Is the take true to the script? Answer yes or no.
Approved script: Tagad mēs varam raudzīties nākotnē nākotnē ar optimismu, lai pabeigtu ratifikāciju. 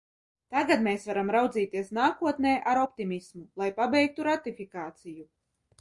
no